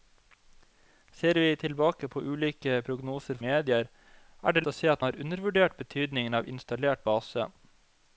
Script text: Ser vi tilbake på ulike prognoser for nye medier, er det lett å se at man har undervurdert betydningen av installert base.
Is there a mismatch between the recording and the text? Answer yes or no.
yes